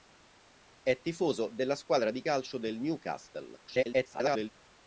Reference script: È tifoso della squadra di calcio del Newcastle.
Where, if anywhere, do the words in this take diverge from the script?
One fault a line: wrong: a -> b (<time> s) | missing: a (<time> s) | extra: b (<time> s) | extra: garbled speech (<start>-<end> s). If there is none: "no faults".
extra: garbled speech (3.7-4.5 s)